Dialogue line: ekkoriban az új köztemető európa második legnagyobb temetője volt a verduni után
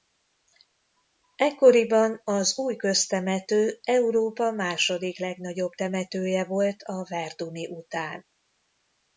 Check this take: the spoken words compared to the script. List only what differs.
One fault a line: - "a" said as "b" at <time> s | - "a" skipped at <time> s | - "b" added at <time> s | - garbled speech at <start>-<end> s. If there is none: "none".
none